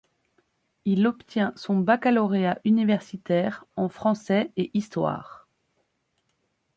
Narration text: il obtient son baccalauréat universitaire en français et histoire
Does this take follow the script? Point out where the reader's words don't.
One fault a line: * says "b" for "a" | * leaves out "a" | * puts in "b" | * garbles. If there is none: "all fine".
all fine